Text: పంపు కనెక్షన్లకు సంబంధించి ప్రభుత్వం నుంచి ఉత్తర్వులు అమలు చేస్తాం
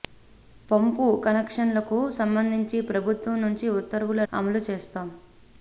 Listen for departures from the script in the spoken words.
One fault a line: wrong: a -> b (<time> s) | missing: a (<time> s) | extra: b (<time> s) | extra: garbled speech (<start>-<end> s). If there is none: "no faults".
no faults